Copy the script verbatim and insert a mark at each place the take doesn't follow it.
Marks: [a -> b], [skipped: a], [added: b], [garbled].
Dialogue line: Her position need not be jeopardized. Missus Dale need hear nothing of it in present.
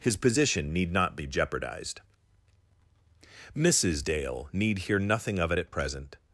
[Her -> His] position need not be jeopardized. Missus Dale need hear nothing of it [in -> at] present.